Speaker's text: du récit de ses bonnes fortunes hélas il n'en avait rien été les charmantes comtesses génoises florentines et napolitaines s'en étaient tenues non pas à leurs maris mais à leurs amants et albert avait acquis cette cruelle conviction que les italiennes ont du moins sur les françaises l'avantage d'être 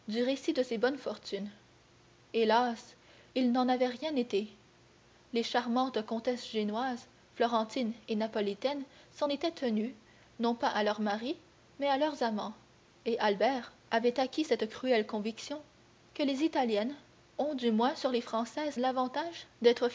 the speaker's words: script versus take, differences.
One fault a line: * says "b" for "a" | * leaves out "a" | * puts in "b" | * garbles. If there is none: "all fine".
all fine